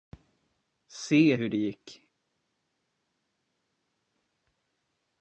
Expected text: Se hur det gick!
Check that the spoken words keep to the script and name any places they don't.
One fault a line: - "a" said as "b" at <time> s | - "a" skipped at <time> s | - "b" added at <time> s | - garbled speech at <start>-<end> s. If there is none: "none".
none